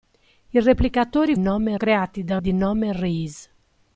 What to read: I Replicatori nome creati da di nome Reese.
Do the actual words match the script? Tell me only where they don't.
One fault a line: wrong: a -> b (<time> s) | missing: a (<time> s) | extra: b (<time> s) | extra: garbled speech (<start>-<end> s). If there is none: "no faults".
no faults